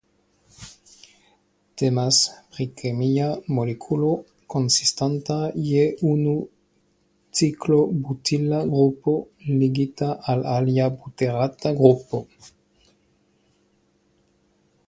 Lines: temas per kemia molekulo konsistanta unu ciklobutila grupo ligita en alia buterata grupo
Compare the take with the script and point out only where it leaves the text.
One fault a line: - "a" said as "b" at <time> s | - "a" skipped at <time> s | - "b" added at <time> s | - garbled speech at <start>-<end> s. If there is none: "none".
- "per" said as "pri" at 2.5 s
- "je" added at 5.7 s
- "en" said as "al" at 10.3 s